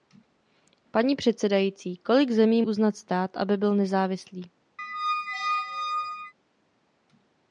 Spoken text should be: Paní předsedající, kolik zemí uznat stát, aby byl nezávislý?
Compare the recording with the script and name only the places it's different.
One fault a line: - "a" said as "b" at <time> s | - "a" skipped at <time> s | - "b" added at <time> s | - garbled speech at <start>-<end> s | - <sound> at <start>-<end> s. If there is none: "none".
- squeak at 4.8-6.3 s